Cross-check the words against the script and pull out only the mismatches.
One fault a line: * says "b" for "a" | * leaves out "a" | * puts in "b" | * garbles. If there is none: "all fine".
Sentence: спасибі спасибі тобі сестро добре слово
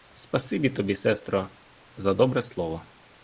* leaves out "спасибі"
* puts in "за"